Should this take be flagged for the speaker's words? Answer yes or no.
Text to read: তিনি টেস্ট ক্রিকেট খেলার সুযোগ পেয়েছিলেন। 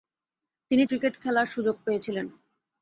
yes